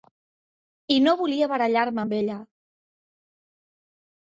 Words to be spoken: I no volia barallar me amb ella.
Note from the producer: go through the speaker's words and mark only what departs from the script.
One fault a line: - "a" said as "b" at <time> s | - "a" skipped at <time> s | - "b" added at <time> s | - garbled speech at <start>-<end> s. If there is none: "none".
none